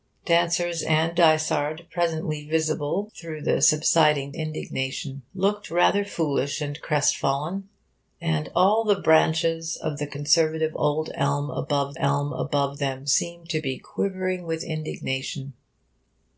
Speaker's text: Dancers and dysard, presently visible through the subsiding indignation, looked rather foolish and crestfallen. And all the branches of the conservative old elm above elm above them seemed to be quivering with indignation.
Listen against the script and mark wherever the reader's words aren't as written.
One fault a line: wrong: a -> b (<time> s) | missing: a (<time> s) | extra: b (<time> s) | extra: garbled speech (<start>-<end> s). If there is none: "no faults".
no faults